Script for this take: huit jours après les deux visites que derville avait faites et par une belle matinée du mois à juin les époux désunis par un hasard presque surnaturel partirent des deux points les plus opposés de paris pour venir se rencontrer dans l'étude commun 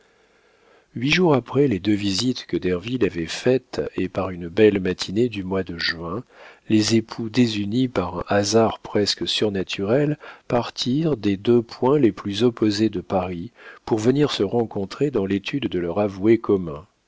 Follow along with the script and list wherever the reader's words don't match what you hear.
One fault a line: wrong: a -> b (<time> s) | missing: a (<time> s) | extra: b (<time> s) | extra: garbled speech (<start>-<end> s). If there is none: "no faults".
wrong: à -> de (5.6 s)
extra: de leur avoué (15.7 s)